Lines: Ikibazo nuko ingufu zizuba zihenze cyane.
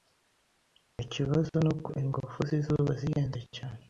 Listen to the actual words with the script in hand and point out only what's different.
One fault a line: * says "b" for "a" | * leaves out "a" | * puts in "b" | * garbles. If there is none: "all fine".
all fine